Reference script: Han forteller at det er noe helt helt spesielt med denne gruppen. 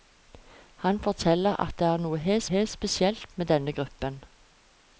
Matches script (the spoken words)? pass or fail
pass